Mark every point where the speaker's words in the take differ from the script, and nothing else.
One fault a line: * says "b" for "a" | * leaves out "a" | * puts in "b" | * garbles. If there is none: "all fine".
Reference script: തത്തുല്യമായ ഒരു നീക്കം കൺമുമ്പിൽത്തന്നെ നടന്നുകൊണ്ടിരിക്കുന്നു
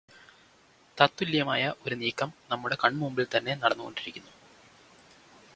* puts in "നമ്മുടെ"